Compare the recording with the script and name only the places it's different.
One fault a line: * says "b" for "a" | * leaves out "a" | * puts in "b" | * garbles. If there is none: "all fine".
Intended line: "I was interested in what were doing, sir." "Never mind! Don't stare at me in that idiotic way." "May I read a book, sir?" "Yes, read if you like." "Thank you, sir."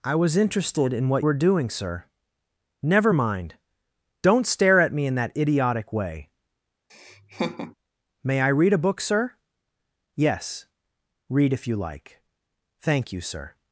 all fine